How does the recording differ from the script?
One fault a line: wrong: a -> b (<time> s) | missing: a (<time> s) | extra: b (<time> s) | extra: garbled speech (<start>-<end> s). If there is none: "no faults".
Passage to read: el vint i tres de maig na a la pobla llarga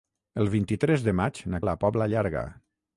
no faults